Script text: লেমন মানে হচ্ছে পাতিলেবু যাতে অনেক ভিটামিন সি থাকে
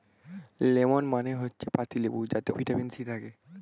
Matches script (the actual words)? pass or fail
fail